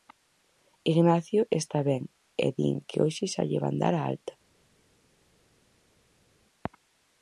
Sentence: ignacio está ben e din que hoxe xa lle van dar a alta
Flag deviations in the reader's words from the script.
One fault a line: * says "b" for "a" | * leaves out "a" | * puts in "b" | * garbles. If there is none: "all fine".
all fine